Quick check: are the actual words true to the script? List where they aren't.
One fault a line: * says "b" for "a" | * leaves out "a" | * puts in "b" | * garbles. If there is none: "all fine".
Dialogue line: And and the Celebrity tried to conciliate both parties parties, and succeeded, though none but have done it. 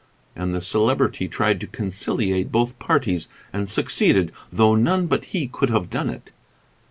* leaves out "and"
* leaves out "parties"
* puts in "he could"